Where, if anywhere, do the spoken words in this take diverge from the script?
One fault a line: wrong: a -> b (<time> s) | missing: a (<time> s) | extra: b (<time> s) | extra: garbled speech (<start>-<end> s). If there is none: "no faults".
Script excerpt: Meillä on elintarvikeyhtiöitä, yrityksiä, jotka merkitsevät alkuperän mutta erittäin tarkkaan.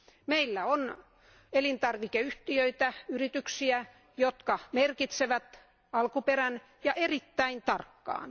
wrong: mutta -> ja (6.8 s)